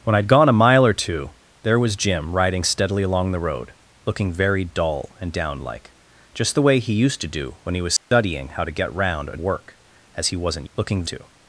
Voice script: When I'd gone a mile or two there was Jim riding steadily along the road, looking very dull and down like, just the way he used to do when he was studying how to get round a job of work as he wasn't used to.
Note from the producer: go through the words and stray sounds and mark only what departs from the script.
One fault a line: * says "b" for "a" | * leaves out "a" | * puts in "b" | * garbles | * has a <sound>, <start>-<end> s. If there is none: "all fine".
* has a dropout, 8.0-8.1 s
* leaves out "job of"
* says "looking" for "used"